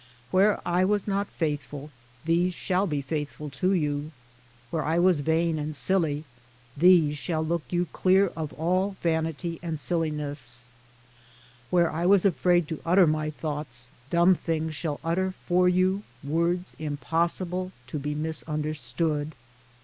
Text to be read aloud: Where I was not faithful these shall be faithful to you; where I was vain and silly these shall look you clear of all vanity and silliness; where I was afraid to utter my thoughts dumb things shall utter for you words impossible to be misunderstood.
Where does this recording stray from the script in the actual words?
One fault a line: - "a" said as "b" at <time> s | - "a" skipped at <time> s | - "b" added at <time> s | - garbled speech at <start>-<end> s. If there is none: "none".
none